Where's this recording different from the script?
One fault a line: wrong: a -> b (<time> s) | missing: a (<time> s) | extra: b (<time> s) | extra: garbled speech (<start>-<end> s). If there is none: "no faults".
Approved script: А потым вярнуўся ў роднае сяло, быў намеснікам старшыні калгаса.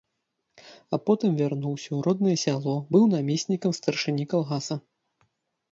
no faults